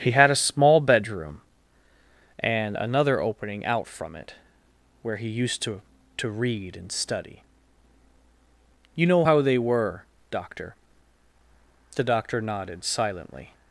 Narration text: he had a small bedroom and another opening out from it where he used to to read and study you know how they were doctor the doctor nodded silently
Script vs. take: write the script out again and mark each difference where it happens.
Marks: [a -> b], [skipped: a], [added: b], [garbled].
he had a small bedroom and another opening out from it where he used to to read and study you know how they were doctor the doctor nodded silently